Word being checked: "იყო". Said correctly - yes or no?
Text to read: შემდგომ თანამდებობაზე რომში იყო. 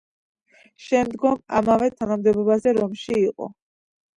yes